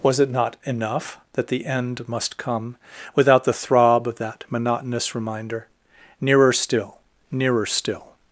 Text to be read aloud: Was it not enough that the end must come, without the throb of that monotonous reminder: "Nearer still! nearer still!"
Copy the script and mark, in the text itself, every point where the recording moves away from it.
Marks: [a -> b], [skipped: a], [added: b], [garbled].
Was it not enough that the end must come, without the throb of that monotonous reminder: "Nearer still! nearer still!"